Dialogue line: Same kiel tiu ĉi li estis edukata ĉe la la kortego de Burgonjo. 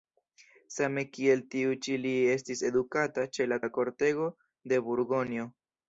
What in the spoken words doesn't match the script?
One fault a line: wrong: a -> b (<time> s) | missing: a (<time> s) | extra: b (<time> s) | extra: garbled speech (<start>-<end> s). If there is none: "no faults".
no faults